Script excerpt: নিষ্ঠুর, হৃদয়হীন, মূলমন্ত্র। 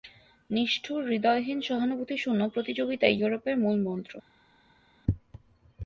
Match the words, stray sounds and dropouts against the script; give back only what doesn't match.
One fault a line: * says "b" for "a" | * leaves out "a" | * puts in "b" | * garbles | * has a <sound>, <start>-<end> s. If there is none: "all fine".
* puts in "সহানুভূতিশূন্য প্রতিযোগিতাই ইউরোপের"